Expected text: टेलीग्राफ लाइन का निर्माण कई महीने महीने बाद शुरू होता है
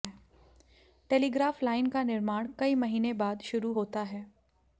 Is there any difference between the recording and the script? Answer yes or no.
yes